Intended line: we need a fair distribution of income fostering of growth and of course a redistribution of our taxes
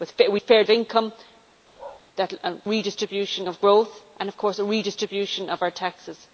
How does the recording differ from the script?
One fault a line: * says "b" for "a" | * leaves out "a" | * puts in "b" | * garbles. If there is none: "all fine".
* leaves out "need"
* leaves out "distribution"
* says "redistribution" for "fostering"